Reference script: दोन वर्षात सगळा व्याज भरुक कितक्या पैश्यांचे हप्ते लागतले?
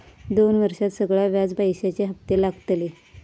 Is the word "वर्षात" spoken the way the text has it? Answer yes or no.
yes